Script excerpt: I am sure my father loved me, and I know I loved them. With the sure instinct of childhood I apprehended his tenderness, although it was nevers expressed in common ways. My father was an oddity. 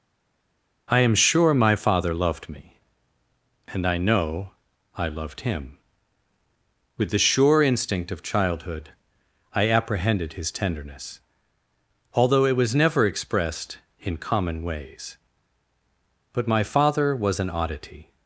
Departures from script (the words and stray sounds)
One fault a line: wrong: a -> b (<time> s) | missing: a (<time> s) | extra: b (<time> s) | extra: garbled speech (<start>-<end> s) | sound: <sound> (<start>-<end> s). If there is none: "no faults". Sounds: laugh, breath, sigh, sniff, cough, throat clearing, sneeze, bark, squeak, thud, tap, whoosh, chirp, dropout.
wrong: them -> him (5.4 s)
wrong: nevers -> never (12.7 s)
extra: But (16.3 s)